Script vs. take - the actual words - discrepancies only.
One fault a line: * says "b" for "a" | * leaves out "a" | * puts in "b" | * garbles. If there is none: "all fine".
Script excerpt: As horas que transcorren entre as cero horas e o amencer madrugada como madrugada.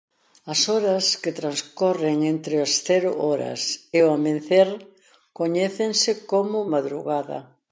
* says "coñécense" for "madrugada"